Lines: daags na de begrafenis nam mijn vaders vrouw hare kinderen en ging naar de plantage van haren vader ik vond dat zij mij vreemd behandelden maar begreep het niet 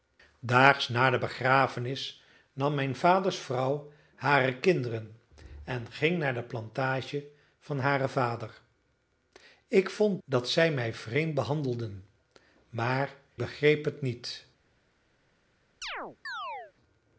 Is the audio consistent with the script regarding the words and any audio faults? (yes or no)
no